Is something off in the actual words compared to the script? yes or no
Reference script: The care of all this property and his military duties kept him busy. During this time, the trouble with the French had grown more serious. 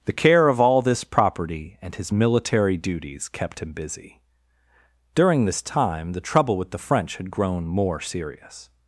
no